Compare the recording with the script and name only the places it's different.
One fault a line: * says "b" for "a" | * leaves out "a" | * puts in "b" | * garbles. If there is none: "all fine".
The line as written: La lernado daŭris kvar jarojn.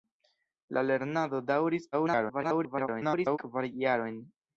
* garbles